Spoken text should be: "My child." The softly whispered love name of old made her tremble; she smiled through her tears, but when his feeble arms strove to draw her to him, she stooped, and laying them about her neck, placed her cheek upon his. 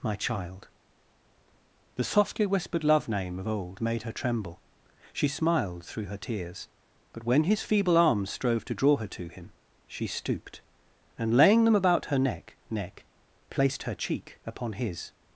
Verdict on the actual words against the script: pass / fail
fail